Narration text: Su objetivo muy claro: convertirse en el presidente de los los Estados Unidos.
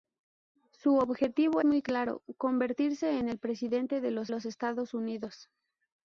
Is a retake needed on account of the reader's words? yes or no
no